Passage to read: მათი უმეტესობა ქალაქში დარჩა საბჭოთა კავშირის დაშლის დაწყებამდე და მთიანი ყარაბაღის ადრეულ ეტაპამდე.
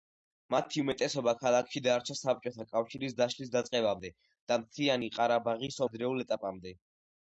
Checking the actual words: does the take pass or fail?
pass